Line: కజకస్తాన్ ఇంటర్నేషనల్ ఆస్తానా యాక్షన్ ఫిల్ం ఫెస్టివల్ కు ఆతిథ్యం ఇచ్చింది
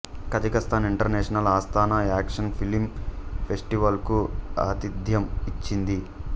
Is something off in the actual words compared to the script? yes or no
no